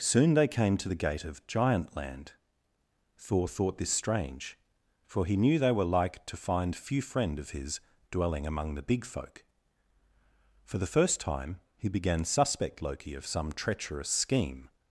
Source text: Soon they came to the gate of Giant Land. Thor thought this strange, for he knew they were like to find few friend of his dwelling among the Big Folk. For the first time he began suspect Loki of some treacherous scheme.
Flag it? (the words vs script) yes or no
no